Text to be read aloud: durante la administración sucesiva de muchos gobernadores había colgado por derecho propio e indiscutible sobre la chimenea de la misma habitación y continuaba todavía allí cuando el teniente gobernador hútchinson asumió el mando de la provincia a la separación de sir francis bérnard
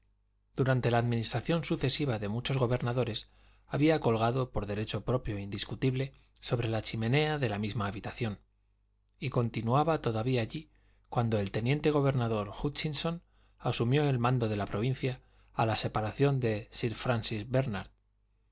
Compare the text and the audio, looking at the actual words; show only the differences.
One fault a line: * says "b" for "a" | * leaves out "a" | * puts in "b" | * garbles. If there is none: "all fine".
all fine